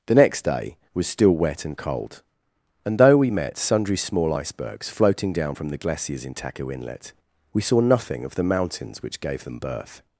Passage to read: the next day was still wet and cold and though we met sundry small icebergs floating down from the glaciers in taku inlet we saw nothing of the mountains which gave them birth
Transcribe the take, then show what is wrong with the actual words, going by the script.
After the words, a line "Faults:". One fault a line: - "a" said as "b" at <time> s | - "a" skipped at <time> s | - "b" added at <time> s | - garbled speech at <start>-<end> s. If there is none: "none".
the next day was still wet and cold and though we met sundry small icebergs floating down from the glaciers in taku inlet we saw nothing of the mountains which gave them birth
Faults:
none